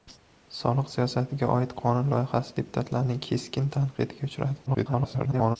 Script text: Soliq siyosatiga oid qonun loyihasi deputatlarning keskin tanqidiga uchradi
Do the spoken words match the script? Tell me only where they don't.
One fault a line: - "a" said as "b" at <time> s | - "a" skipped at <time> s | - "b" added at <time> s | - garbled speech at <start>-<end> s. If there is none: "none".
- garbled speech at 4.7-5.6 s